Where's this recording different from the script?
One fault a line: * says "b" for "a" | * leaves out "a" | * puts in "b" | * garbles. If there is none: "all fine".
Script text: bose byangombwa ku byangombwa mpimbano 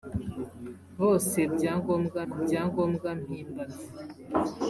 all fine